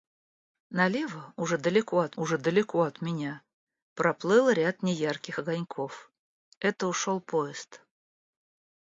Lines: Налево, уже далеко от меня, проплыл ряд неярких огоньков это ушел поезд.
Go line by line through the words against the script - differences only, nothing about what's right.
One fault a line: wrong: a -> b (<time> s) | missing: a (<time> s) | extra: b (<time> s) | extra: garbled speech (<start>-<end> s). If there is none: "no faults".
extra: уже далеко от (2.2 s)